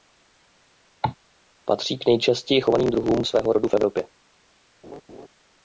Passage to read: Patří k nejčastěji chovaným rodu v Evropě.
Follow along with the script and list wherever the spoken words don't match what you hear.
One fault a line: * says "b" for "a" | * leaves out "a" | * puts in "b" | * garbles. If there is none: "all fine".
* puts in "druhům svého"